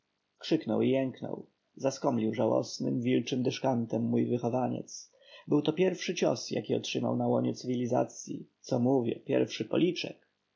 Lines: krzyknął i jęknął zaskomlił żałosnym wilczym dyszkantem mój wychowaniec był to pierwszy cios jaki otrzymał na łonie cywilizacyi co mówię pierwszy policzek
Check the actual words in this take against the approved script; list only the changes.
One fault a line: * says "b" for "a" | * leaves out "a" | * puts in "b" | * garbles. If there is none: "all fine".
all fine